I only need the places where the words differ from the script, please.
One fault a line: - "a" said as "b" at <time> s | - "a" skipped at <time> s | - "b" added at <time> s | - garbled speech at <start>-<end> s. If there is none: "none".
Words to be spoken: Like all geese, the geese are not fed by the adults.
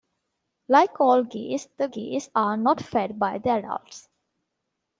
none